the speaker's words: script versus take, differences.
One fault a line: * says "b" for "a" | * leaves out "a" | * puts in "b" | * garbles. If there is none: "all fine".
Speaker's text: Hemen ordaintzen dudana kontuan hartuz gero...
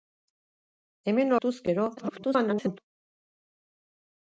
* leaves out "ordaintzen dudana kontuan"
* garbles